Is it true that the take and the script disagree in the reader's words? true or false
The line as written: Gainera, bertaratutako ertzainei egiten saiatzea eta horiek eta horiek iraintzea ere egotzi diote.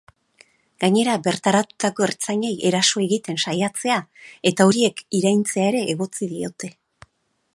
true